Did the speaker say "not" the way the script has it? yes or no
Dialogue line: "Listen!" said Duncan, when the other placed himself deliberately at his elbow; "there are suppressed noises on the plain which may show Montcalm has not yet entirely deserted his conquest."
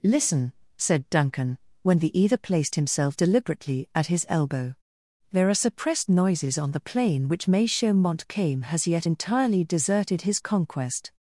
no